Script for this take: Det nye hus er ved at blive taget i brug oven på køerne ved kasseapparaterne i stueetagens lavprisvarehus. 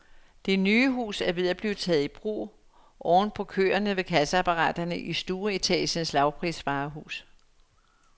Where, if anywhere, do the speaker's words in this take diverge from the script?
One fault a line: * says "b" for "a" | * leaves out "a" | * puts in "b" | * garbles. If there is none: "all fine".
all fine